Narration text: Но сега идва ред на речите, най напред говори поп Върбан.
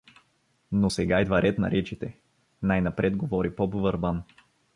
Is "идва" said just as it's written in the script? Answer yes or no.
yes